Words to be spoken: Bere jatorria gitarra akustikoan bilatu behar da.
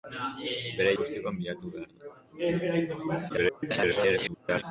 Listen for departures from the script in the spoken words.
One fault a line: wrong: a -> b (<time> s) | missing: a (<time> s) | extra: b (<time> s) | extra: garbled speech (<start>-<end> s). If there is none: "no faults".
missing: jatorria gitarra (0.9 s)
extra: garbled speech (3.3-4.6 s)